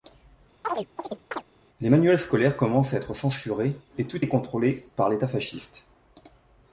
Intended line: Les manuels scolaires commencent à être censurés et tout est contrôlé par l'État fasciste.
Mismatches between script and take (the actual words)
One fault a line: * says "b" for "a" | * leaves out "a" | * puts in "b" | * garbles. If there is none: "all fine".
all fine